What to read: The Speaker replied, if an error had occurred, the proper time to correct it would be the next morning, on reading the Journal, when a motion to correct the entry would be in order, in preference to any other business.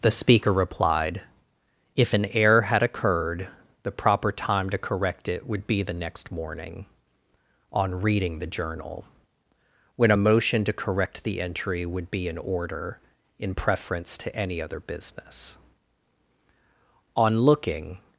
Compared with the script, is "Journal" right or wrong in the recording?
right